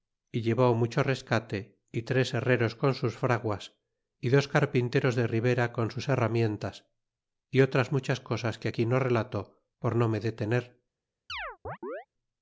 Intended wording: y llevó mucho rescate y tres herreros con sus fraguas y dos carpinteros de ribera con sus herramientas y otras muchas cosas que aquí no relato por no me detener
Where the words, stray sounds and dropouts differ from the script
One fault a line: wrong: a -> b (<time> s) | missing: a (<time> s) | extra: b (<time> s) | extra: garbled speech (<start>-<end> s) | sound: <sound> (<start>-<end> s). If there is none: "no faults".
sound: chirp (11.3-12.1 s)